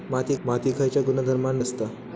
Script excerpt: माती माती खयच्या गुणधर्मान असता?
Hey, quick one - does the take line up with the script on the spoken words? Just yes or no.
yes